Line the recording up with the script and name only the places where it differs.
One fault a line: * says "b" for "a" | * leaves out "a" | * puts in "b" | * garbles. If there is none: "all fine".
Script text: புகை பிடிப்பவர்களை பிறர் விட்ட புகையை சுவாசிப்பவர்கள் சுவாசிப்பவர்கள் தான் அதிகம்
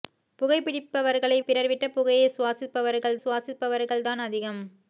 all fine